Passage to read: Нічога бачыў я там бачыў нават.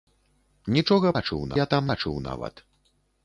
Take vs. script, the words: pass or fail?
pass